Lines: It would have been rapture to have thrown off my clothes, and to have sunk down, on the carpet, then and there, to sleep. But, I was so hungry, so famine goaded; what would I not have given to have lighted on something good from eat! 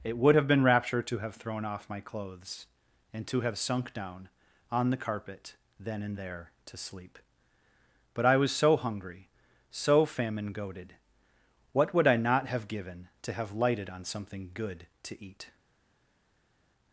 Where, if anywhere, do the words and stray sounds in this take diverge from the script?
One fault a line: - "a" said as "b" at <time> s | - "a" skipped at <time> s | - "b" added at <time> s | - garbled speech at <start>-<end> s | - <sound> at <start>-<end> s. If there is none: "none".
- "from" said as "to" at 15.0 s